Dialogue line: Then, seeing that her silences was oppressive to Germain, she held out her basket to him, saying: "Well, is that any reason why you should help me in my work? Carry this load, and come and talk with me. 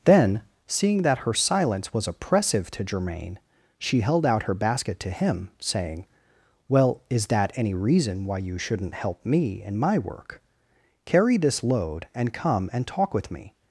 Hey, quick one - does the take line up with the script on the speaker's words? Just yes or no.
no